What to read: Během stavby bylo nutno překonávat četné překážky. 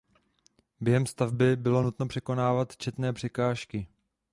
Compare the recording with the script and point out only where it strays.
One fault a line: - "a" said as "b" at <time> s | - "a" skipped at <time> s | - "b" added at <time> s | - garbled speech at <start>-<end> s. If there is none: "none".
none